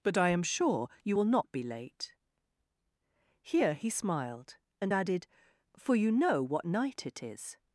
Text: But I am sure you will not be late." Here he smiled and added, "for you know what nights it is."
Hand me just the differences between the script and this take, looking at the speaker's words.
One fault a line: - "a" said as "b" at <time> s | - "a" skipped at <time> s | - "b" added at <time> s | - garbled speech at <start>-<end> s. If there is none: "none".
- "nights" said as "night" at 6.7 s